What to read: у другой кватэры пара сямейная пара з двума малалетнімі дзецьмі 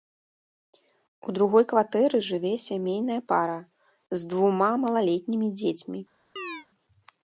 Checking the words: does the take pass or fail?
fail